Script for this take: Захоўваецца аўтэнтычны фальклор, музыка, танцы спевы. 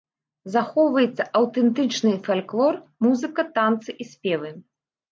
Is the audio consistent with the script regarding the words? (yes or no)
no